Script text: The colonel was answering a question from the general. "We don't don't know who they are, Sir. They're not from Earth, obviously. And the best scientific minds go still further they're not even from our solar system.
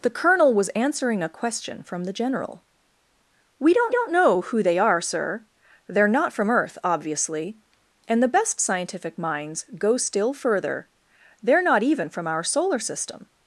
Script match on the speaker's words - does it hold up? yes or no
yes